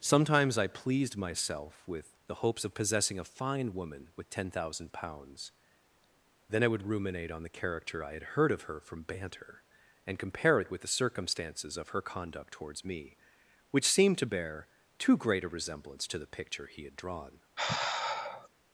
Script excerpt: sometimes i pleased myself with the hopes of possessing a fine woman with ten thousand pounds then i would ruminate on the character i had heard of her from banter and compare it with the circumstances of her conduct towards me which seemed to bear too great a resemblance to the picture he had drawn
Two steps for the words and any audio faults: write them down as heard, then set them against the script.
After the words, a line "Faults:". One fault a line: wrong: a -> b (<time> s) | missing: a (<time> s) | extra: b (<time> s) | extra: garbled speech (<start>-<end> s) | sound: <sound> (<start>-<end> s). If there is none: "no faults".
sometimes i pleased myself with the hopes of possessing a fine woman with ten thousand pounds then i would ruminate on the character i had heard of her from banter and compare it with the circumstances of her conduct towards me which seemed to bear too great a resemblance to the picture he had drawn
Faults:
sound: sigh (17.6-18.5 s)